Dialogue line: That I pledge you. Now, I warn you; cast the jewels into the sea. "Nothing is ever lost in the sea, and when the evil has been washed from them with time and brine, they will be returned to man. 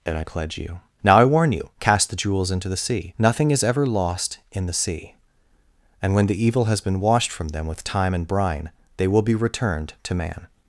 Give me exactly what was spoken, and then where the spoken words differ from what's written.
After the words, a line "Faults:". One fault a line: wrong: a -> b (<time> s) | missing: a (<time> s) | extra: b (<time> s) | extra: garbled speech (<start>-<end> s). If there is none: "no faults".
And I pledge you. Now, I warn you; cast the jewels into the sea. "Nothing is ever lost in the sea, and when the evil has been washed from them with time and brine, they will be returned to man.
Faults:
wrong: That -> And (0.1 s)